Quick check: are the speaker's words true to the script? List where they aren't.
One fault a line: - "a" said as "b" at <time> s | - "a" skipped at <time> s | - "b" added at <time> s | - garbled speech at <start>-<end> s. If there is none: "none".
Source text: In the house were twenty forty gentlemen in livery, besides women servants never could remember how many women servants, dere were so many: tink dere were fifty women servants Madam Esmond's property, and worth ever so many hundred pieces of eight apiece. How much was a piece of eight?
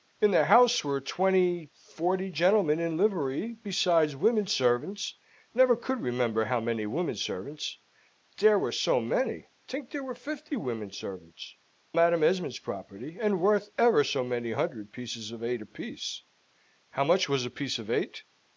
none